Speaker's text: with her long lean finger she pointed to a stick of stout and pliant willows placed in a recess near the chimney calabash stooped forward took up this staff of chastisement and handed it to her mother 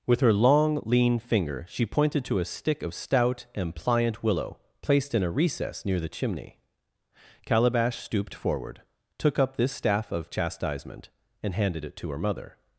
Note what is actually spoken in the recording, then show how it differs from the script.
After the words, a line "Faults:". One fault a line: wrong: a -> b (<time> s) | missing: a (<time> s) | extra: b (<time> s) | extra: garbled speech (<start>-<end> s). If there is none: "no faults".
with her long lean finger she pointed to a stick of stout and pliant willow placed in a recess near the chimney calabash stooped forward took up this staff of chastisement and handed it to her mother
Faults:
wrong: willows -> willow (4.2 s)